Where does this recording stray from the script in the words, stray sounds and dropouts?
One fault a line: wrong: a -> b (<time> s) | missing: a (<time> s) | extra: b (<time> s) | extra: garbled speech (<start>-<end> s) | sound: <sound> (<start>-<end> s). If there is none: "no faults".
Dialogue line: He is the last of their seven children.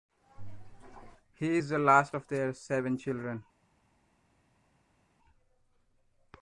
no faults